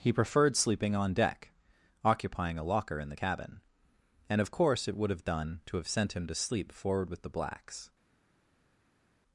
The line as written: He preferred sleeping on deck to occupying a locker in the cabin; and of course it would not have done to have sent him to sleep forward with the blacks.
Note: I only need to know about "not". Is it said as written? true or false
false